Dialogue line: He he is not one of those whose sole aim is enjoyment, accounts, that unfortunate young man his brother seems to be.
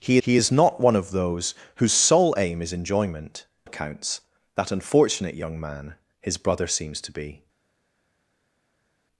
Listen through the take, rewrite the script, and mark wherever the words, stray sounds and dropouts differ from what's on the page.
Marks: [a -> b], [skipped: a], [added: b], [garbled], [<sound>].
He he is not one of those whose sole aim is enjoyment, accounts, that unfortunate young man his brother seems to be.